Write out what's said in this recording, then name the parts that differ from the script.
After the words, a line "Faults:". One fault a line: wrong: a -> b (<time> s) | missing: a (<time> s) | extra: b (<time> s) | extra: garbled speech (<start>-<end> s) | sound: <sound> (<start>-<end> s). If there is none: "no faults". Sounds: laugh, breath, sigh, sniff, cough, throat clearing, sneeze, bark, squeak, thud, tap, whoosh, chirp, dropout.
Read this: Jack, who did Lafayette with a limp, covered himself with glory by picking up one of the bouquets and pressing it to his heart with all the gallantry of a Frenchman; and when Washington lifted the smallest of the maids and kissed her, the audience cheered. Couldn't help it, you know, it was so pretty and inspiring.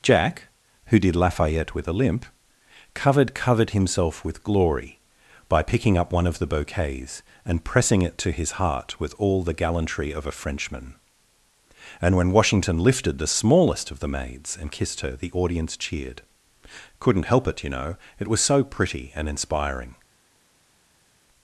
Jack, who did Lafayette with a limp, covered covered himself with glory by picking up one of the bouquets and pressing it to his heart with all the gallantry of a Frenchman; and when Washington lifted the smallest of the maids and kissed her, the audience cheered. Couldn't help it, you know, it was so pretty and inspiring.
Faults:
extra: covered (3.4 s)